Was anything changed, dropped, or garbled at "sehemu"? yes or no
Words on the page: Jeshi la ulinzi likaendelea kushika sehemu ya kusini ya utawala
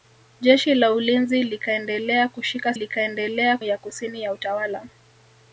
yes